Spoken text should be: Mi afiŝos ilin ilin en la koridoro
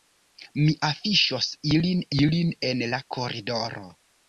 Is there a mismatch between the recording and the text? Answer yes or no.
no